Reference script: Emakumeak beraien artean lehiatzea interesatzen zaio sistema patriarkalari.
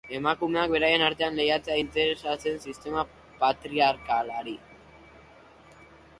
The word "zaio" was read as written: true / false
false